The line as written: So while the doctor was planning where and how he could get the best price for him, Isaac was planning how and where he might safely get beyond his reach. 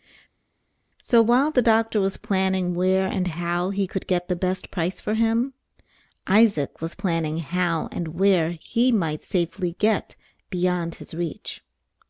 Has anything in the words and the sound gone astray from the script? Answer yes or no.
no